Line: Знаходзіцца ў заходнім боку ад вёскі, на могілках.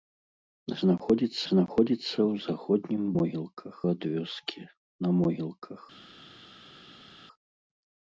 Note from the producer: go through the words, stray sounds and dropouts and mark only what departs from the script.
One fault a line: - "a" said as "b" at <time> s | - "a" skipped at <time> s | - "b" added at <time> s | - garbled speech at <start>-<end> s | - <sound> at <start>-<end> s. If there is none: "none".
- "знаходзіцца" added at 1.5 s
- "боку" said as "могілках" at 3.2 s